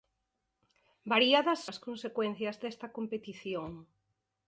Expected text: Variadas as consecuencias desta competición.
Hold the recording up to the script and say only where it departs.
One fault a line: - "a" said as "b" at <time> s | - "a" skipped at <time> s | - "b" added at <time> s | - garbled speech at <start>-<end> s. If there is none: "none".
none